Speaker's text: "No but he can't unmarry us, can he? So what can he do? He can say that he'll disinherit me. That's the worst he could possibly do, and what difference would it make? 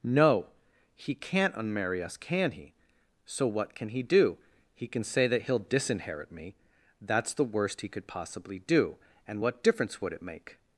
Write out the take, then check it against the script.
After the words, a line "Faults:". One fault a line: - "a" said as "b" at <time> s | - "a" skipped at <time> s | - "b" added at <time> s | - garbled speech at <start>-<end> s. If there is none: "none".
"No he can't unmarry us, can he? So what can he do? He can say that he'll disinherit me. That's the worst he could possibly do, and what difference would it make?
Faults:
- "but" skipped at 0.5 s